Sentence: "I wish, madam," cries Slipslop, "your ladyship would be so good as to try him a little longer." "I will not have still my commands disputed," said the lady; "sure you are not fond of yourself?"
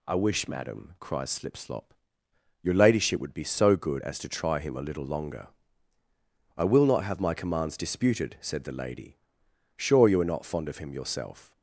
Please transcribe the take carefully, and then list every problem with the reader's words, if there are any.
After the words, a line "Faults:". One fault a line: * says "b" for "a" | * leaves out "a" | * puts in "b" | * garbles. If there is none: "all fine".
"I wish, madam," cries Slipslop, "your ladyship would be so good as to try him a little longer." "I will not have my commands disputed," said the lady; "sure you are not fond of him yourself?"
Faults:
* leaves out "still"
* puts in "him"